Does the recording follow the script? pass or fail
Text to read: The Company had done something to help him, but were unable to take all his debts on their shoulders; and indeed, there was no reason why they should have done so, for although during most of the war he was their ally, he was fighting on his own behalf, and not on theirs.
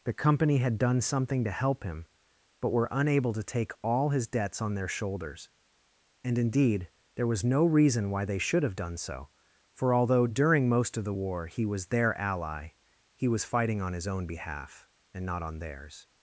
pass